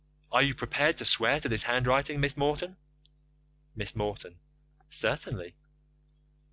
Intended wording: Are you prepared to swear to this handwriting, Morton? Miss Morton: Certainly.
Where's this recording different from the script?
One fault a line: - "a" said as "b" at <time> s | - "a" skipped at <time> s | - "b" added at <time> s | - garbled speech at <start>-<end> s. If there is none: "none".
- "Miss" added at 2.2 s